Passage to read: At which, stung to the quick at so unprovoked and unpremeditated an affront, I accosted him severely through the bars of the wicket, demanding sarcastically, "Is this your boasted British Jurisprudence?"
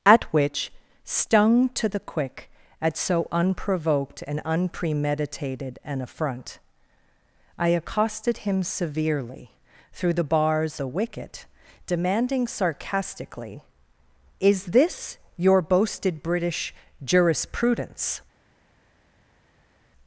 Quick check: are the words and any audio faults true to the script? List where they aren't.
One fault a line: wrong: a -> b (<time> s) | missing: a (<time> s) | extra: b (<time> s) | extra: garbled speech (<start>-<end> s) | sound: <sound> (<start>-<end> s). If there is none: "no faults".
missing: of (10.8 s)